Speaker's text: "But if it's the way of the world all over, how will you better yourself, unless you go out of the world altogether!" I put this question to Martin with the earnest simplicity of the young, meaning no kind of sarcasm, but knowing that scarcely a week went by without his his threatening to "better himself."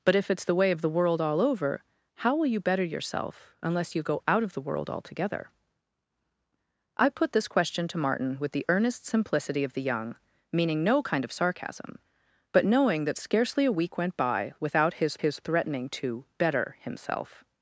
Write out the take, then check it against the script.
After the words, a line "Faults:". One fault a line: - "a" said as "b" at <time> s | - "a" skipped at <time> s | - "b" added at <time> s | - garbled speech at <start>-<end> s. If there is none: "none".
"But if it's the way of the world all over, how will you better yourself, unless you go out of the world altogether!" I put this question to Martin with the earnest simplicity of the young, meaning no kind of sarcasm, but knowing that scarcely a week went by without his his threatening to "better himself."
Faults:
none